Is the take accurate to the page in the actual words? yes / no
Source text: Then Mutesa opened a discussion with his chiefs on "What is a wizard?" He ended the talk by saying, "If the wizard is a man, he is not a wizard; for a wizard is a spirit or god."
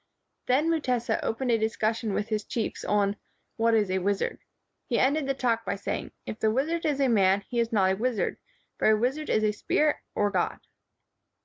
yes